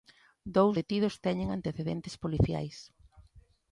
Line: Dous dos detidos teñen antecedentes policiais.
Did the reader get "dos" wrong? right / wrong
wrong